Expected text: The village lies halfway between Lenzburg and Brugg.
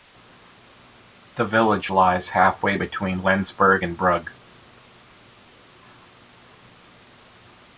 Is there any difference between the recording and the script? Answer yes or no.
no